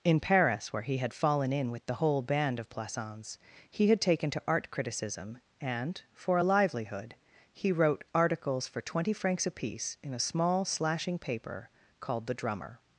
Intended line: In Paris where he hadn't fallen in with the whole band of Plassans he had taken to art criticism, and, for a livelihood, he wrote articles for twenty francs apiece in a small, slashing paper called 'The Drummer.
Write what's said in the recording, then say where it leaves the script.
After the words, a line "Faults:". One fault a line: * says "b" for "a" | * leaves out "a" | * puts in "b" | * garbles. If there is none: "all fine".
In Paris where he had fallen in with the whole band of Plassans he had taken to art criticism, and, for a livelihood, he wrote articles for twenty francs apiece in a small, slashing paper called 'The Drummer.
Faults:
* says "had" for "hadn't"